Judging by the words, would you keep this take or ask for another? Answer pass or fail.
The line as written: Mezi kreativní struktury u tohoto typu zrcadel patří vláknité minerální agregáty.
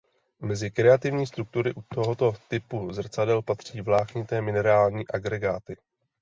pass